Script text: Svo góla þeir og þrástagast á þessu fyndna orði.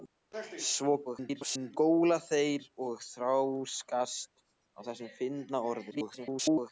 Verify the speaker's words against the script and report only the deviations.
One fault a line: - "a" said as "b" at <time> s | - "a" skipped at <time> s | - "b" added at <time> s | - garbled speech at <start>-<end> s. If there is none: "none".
- garbled speech at 1.0-1.8 s
- garbled speech at 5.9-6.7 s